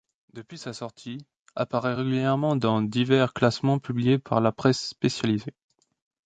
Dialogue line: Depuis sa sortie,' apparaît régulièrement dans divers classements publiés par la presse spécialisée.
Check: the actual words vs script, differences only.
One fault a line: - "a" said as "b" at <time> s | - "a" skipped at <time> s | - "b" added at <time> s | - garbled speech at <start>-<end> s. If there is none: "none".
none